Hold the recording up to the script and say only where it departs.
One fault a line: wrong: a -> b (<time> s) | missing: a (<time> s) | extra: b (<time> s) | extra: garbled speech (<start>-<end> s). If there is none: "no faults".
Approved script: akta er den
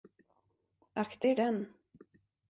no faults